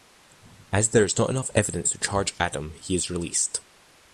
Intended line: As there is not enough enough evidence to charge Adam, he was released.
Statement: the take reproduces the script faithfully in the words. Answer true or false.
false